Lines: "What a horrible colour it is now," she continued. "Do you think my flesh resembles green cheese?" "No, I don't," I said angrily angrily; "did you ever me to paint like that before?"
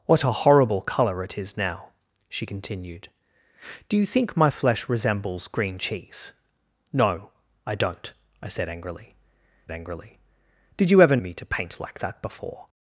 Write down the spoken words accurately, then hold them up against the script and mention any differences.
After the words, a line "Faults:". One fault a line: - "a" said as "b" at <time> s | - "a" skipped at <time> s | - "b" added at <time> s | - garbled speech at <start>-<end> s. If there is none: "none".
"What a horrible colour it is now," she continued. "Do you think my flesh resembles green cheese?" "No, I don't," I said angrily angrily; "did you ever me to paint like that before?"
Faults:
none